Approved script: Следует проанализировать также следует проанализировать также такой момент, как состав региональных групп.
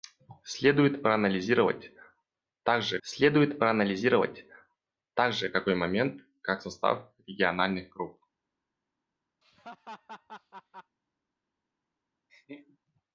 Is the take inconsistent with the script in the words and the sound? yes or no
yes